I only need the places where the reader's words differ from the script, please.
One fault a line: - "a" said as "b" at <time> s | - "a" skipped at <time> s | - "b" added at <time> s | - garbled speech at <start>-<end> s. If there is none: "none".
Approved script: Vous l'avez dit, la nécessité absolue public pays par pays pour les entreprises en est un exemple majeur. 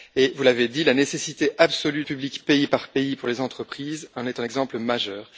none